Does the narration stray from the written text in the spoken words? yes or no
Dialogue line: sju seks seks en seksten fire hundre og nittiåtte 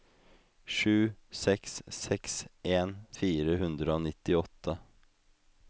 yes